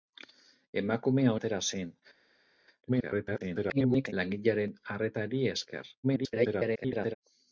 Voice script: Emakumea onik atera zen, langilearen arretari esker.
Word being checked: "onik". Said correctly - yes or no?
no